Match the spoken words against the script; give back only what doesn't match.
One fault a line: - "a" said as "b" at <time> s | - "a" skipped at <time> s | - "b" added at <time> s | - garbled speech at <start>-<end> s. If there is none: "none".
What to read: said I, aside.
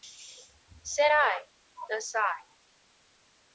none